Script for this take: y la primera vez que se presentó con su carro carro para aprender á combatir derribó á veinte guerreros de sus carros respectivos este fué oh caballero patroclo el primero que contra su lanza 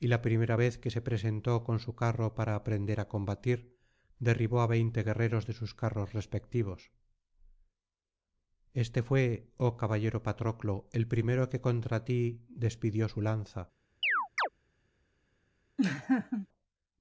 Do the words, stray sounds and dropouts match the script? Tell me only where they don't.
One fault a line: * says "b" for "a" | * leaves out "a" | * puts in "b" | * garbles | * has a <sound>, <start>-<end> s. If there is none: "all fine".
* leaves out "carro"
* puts in "ti despidió"
* has a chirp, 14.0-14.5 s
* has a laugh, 15.8-16.5 s